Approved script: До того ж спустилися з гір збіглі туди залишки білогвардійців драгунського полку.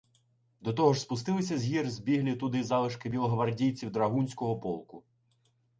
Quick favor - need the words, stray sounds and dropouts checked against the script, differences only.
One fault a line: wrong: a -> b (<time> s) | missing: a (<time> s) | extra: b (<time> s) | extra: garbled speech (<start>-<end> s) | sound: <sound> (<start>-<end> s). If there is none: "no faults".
no faults